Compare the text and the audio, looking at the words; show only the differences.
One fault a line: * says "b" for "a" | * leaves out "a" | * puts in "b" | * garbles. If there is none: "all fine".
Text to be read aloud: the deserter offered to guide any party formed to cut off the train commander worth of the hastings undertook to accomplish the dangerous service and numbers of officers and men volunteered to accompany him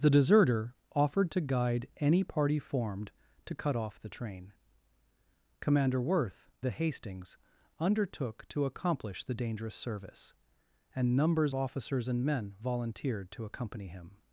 * leaves out "of"
* leaves out "of"